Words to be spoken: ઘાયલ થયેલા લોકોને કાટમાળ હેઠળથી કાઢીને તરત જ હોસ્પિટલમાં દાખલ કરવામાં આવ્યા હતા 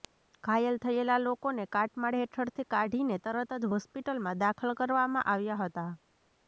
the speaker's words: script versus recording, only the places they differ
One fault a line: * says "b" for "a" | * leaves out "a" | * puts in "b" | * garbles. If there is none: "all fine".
all fine